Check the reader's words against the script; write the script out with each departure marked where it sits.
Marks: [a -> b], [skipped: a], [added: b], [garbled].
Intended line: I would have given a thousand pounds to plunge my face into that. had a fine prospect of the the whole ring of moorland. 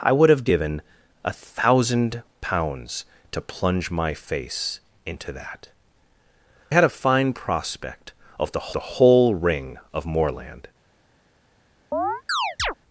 I would have given a thousand pounds to plunge my face into that. had a fine prospect of the the whole ring of moorland.